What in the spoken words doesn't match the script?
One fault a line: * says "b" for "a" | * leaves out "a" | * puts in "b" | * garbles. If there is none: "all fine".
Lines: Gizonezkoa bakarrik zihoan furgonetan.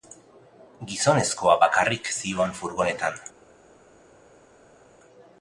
all fine